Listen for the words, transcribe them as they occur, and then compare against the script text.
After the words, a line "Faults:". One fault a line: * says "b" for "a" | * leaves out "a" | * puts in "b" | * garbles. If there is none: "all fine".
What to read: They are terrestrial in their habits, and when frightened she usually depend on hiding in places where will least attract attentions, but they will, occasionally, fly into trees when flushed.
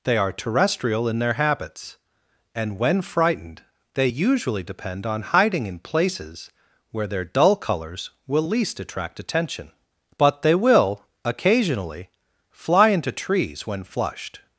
They are terrestrial in their habits, and when frightened they usually depend on hiding in places where their dull colors will least attract attention, but they will, occasionally, fly into trees when flushed.
Faults:
* says "they" for "she"
* puts in "their dull colors"
* says "attention" for "attentions"